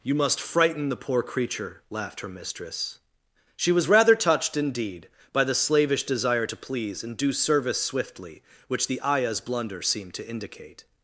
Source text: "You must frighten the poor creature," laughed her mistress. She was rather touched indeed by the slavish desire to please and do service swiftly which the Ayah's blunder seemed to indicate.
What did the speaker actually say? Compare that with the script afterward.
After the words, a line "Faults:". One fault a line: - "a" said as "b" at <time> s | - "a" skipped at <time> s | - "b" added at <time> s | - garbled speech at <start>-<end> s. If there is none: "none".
"You must frighten the poor creature," laughed her mistress. She was rather touched indeed by the slavish desire to please and do service swiftly which the Ayah's blunder seemed to indicate.
Faults:
none